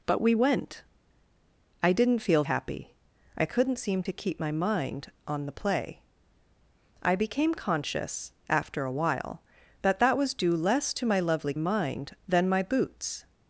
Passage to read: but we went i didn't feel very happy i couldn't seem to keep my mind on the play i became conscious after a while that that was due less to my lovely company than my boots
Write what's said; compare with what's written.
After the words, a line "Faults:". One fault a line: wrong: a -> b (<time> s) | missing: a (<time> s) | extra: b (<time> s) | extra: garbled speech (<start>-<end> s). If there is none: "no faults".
but we went i didn't feel happy i couldn't seem to keep my mind on the play i became conscious after a while that that was due less to my lovely mind than my boots
Faults:
missing: very (2.4 s)
wrong: company -> mind (11.6 s)